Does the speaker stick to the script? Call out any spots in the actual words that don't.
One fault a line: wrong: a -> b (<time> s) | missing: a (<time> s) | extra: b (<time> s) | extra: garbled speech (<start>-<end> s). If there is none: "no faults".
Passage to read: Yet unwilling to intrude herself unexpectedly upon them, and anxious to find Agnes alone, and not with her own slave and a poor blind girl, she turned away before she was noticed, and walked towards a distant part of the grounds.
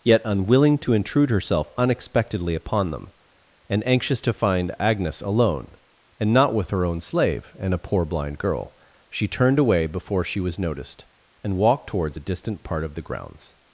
no faults